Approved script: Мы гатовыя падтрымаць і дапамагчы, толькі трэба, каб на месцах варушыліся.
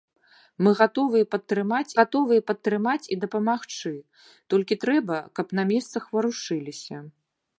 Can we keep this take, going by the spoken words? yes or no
no